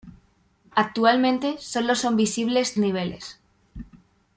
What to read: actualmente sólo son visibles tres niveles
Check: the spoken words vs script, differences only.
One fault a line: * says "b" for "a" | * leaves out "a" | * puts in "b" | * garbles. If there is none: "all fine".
* leaves out "tres"